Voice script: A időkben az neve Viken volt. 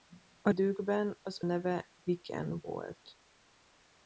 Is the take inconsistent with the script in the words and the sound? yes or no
no